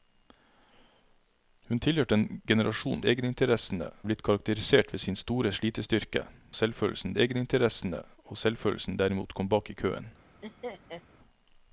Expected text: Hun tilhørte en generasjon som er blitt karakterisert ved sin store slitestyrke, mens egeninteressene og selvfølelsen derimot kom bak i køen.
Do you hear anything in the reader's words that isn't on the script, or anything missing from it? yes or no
yes